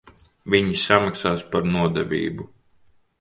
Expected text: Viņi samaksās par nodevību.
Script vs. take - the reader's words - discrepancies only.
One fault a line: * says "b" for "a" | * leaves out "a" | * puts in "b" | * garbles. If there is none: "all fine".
all fine